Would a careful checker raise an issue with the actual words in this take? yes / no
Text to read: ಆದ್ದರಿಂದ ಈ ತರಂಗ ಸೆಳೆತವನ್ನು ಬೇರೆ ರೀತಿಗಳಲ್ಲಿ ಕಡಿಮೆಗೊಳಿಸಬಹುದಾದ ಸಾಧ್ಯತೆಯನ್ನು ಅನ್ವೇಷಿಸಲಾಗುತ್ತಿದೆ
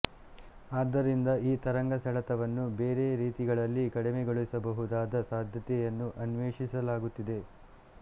no